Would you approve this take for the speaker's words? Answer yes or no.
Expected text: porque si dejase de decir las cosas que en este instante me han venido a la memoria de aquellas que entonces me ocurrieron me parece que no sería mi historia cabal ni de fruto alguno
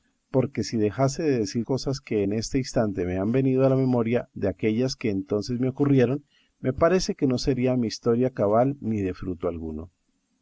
no